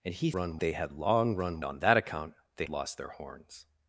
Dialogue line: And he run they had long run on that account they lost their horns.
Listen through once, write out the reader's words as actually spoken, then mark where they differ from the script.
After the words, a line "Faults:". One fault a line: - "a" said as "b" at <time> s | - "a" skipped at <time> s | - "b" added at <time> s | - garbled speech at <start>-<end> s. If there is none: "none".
And he run they had long run on that account they lost their horns.
Faults:
none